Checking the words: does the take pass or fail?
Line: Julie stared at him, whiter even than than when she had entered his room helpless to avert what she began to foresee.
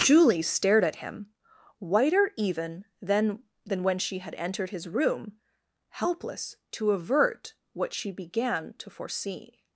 pass